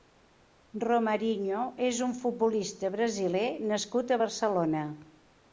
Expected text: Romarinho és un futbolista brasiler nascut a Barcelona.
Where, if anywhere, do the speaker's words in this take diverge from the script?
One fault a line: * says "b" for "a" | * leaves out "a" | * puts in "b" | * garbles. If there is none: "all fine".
all fine